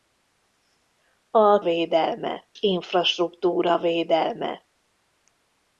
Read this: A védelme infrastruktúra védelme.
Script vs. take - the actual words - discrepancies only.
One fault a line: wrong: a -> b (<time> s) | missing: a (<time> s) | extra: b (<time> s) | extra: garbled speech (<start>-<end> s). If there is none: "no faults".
no faults